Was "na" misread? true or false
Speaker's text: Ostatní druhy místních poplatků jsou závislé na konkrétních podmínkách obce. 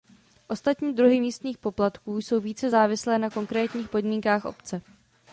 false